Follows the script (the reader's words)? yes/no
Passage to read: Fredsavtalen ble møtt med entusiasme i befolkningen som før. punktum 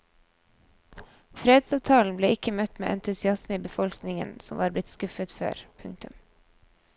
no